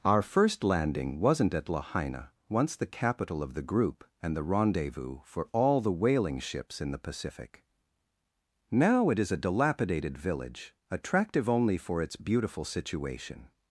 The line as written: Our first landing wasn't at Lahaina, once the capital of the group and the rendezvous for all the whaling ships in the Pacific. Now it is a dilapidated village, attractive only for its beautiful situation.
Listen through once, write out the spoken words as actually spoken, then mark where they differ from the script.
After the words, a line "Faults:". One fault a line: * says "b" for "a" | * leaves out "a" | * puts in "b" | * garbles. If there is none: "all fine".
Our first landing wasn't at Lahaina, once the capital of the group and the rendezvous for all the whaling ships in the Pacific. Now it is a dilapidated village, attractive only for its beautiful situation.
Faults:
all fine